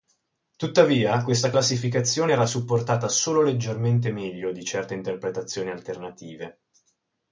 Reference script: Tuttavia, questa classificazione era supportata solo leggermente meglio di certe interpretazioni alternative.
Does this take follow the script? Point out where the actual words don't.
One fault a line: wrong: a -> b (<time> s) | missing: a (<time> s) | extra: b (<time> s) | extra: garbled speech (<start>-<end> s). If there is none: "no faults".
no faults